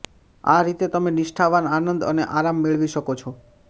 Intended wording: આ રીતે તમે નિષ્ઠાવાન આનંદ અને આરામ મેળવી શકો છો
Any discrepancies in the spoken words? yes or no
no